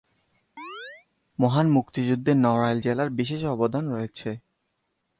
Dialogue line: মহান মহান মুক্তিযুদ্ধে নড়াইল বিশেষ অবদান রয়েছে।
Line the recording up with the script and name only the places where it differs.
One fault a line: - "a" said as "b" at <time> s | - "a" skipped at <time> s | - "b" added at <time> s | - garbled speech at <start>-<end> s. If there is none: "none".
- "মহান" skipped at 1.7 s
- "জেলার" added at 2.8 s